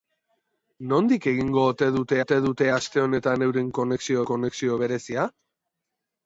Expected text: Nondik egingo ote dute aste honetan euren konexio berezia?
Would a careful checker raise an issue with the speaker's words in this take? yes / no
yes